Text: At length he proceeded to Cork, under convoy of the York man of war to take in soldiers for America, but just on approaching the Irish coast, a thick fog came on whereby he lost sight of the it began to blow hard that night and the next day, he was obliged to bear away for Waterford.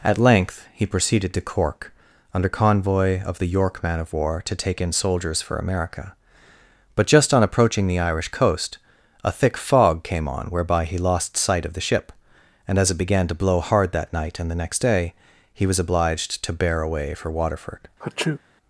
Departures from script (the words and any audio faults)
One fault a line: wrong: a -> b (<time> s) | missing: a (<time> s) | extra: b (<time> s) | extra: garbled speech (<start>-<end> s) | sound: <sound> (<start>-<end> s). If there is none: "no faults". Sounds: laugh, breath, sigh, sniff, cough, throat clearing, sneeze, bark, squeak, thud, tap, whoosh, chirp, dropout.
extra: ship and as (11.8 s)
sound: sneeze (18.0-18.4 s)